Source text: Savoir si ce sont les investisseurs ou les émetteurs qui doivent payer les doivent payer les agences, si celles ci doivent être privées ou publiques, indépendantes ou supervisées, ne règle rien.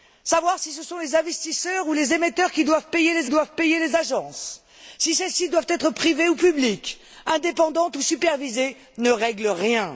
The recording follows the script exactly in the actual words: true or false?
true